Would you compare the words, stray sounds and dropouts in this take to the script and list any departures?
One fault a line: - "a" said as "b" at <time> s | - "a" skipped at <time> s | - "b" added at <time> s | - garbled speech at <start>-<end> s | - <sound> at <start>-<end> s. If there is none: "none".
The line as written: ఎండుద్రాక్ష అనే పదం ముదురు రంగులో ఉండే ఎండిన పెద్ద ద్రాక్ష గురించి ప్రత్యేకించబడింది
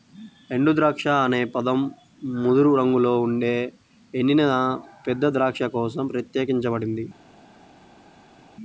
- "గురించి" said as "కోసం" at 5.7 s